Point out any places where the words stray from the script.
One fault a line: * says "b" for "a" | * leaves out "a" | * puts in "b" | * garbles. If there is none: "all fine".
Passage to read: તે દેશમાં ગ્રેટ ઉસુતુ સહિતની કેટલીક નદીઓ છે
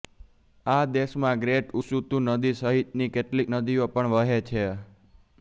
* says "આ" for "તે"
* puts in "નદી"
* puts in "પણ વહે"